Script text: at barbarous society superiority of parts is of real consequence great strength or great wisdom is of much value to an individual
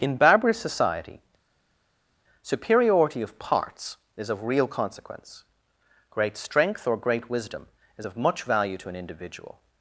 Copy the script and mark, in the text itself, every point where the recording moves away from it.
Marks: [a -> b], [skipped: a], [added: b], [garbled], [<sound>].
[at -> in] barbarous society superiority of parts is of real consequence great strength or great wisdom is of much value to an individual